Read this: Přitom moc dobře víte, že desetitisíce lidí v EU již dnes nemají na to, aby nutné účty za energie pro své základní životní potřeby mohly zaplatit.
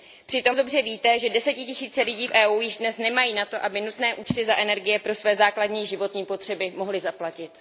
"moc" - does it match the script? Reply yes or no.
no